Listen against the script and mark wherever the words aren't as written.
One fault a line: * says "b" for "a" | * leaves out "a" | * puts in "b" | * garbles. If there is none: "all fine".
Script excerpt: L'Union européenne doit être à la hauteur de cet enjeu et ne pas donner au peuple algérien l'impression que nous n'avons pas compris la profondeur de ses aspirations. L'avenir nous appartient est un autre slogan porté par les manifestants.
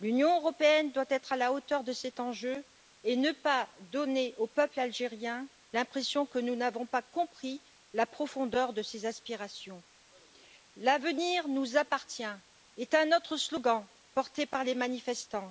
all fine